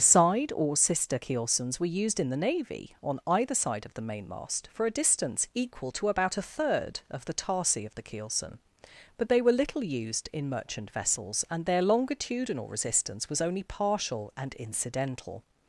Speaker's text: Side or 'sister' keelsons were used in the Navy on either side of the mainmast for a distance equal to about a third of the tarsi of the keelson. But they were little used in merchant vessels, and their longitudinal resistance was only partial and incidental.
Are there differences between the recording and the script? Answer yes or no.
no